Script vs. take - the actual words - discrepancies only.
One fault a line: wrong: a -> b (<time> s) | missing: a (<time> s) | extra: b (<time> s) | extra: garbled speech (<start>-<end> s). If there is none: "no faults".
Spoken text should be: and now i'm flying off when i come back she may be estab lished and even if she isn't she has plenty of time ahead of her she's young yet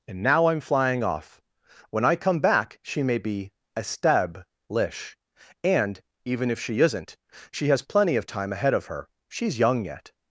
wrong: lished -> lish (4.7 s)